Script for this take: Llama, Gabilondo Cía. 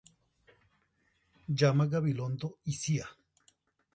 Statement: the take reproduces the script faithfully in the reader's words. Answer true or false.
false